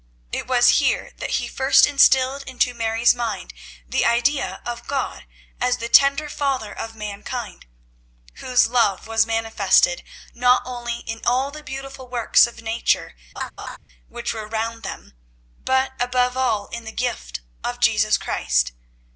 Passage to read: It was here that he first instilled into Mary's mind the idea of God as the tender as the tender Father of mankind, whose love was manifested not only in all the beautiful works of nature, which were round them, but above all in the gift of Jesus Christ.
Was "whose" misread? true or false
false